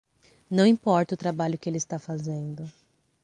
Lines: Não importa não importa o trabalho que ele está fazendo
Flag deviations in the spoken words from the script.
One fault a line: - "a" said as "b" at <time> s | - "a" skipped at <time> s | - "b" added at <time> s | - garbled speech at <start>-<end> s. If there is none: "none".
- "não importa" skipped at 1.1 s